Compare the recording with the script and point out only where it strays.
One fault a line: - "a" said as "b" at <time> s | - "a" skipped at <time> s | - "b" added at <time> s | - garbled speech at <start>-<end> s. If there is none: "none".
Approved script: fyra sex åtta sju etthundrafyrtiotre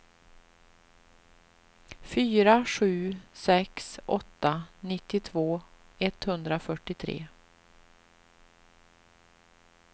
- "sju" added at 2.6 s
- "sju" said as "nittiotvå" at 4.8 s